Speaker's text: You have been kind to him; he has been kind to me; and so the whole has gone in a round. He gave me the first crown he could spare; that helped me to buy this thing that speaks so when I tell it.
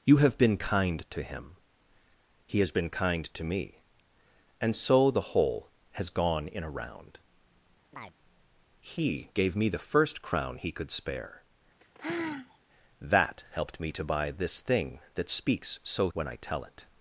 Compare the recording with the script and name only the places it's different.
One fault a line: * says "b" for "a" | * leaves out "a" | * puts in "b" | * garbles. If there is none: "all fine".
all fine